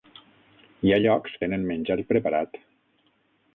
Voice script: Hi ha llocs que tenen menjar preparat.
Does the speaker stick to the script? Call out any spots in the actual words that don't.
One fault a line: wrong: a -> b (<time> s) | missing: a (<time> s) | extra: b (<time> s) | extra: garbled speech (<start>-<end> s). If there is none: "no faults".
missing: que (1.4 s)